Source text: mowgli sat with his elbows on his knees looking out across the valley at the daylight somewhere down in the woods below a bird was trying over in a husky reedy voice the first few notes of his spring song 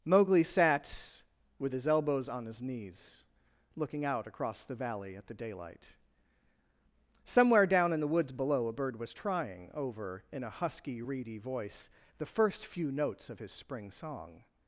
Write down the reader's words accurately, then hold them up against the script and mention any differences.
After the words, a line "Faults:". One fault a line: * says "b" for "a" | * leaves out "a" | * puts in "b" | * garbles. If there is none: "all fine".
mowgli sat with his elbows on his knees looking out across the valley at the daylight somewhere down in the woods below a bird was trying over in a husky reedy voice the first few notes of his spring song
Faults:
all fine